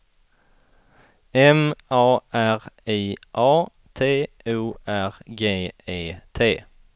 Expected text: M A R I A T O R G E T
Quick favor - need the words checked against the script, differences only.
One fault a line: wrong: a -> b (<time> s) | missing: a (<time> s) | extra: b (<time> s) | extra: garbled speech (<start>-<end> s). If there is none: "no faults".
no faults